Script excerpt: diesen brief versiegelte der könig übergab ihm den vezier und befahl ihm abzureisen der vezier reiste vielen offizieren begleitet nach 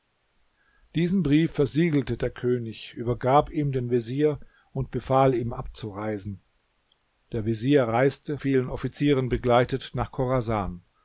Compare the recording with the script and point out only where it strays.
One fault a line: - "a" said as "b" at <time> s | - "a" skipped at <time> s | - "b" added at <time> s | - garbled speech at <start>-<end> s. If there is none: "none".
none